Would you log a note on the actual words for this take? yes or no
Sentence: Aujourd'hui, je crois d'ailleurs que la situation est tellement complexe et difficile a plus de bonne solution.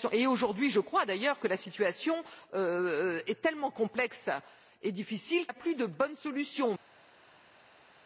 no